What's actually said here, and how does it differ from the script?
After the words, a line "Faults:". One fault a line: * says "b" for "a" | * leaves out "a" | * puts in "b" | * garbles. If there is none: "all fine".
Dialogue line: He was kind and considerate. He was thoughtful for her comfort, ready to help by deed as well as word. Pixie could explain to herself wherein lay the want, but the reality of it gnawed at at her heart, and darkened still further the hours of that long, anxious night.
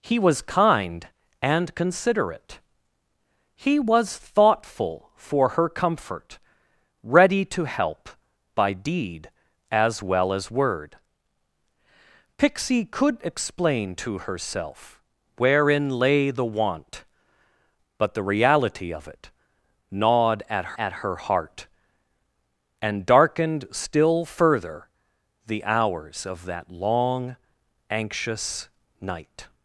He was kind and considerate. He was thoughtful for her comfort, ready to help by deed as well as word. Pixie could explain to herself wherein lay the want, but the reality of it gnawed at at her heart, and darkened still further the hours of that long, anxious night.
Faults:
all fine